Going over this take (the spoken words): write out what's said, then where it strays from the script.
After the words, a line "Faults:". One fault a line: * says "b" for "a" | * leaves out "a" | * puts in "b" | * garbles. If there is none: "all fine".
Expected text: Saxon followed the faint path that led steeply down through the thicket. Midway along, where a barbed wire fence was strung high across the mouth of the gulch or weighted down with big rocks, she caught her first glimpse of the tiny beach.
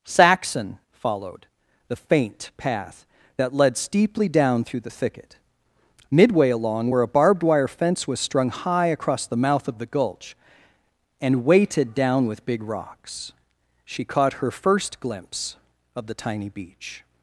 Saxon followed the faint path that led steeply down through the thicket. Midway along, where a barbed wire fence was strung high across the mouth of the gulch and weighted down with big rocks, she caught her first glimpse of the tiny beach.
Faults:
* says "and" for "or"